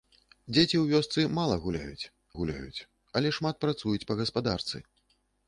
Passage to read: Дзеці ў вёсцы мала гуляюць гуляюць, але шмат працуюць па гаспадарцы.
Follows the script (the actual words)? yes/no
yes